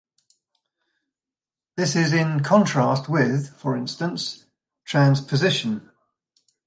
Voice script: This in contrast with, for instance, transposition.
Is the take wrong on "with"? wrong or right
right